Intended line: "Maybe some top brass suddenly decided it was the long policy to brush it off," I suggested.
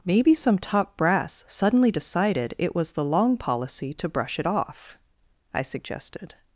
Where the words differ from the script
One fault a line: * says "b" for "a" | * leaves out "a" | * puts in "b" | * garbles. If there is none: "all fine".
all fine